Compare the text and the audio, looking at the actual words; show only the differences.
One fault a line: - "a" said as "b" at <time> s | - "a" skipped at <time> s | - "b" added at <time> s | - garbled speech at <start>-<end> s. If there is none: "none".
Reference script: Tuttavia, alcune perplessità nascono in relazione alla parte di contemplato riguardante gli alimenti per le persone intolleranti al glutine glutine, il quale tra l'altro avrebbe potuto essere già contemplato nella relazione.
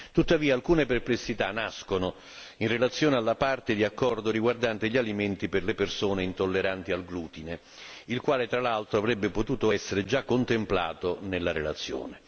- "contemplato" said as "accordo" at 3.8 s
- "glutine" skipped at 7.6 s